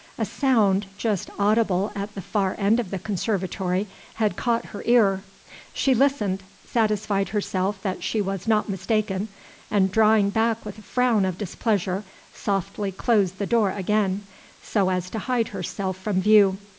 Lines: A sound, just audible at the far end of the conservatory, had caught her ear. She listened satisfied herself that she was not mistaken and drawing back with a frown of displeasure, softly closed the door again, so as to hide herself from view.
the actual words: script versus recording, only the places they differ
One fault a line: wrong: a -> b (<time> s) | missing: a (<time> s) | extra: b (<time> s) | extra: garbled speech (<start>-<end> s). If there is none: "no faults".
no faults